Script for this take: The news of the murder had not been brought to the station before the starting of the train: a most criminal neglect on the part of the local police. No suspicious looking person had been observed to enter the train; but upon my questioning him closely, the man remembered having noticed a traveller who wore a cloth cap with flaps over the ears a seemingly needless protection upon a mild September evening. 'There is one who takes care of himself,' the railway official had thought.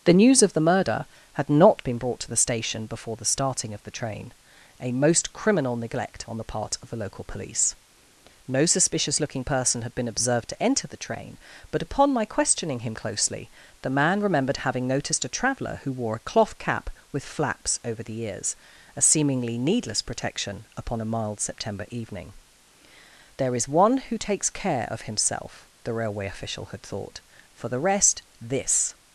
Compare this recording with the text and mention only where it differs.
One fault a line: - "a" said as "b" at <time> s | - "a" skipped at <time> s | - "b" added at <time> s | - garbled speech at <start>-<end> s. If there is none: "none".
- "For the rest this" added at 27.5 s